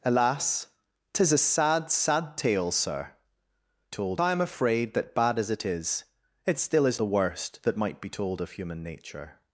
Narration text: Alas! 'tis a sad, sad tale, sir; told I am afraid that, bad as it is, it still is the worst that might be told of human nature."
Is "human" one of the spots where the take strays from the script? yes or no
no